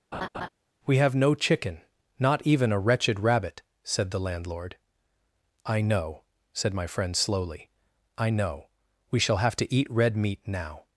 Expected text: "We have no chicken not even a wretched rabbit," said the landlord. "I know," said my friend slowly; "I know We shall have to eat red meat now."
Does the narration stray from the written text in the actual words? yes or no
no